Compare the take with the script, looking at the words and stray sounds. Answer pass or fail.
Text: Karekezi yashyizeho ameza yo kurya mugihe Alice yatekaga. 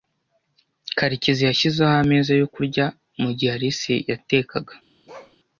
fail